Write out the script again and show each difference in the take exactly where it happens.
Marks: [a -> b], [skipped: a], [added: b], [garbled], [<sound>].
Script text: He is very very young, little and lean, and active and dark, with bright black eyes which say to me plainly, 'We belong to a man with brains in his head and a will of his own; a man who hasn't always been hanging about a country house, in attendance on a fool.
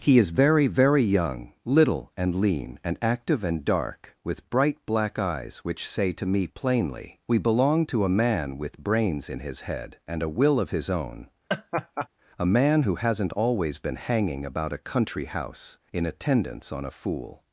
He is very very young, little and lean, and active and dark, with bright black eyes which say to me plainly, 'We belong to a man with brains in his head and a will of his own; [laugh] a man who hasn't always been hanging about a country house, in attendance on a fool.